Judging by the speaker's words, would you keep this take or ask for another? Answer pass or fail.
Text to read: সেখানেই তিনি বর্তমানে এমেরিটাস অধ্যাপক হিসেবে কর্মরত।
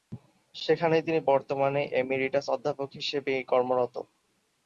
pass